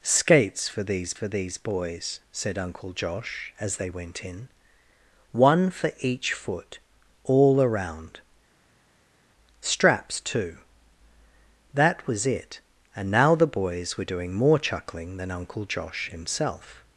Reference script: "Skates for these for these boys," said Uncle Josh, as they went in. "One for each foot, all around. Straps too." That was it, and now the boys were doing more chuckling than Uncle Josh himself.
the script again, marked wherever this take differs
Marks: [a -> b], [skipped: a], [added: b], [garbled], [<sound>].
"Skates for these for these boys," said Uncle Josh, as they went in. "One for each foot, all around. Straps too." That was it, and now the boys were doing more chuckling than Uncle Josh himself.